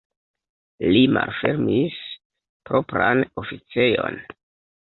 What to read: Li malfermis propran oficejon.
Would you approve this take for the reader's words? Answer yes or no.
yes